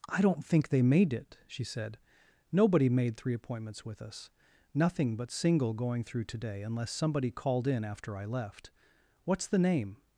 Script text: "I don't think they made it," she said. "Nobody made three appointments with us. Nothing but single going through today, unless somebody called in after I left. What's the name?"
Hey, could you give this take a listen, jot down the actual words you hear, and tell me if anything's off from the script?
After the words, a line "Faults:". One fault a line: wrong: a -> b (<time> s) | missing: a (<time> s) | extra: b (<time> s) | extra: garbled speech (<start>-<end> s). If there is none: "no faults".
"I don't think they made it," she said. "Nobody made three appointments with us. Nothing but single going through today, unless somebody called in after I left. What's the name?"
Faults:
no faults